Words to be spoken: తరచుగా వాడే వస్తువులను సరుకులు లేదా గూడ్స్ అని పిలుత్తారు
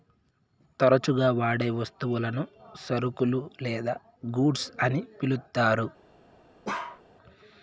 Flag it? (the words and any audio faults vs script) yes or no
yes